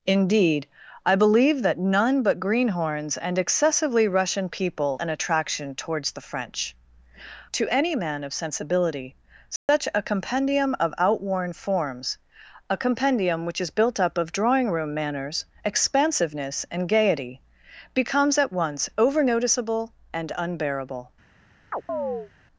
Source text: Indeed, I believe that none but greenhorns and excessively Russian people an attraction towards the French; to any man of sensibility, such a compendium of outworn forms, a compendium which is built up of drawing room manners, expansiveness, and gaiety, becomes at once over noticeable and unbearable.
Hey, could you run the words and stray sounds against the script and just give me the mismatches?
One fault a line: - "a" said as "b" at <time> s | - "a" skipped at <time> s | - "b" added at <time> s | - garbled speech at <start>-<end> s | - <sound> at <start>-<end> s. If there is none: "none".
- dropout at 9.6-9.7 s
- chirp at 21.7-22.3 s